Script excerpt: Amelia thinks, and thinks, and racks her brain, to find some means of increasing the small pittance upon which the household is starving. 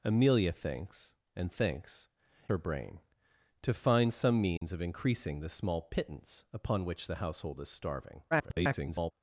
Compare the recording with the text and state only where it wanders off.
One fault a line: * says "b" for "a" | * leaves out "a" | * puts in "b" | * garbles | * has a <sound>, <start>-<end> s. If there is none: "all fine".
* leaves out "and racks"
* has a dropout, 4.6-4.6 s
* garbles